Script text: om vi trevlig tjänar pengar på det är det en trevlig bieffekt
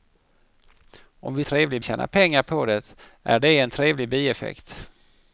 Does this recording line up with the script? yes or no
yes